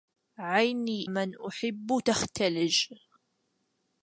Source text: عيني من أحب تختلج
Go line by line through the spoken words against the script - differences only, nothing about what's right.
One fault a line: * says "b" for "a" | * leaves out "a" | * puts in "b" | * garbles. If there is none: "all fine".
all fine